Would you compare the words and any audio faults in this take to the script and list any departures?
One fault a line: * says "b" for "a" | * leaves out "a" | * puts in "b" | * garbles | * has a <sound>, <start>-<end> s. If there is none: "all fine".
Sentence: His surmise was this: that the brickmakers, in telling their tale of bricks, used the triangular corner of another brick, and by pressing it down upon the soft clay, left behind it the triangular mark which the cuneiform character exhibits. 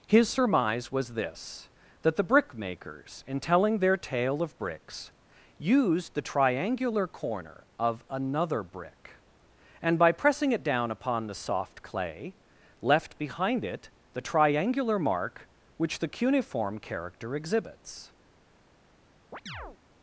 * has a chirp, 19.3-19.8 s